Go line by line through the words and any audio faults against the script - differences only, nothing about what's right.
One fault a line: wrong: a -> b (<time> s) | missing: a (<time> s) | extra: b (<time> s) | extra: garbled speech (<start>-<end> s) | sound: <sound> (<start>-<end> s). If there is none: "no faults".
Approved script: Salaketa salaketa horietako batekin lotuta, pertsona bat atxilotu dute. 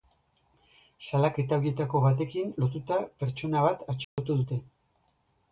missing: salaketa (1.6 s)
sound: dropout (4.0-4.2 s)